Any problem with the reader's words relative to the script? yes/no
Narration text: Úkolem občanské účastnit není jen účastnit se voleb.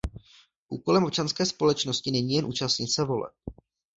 yes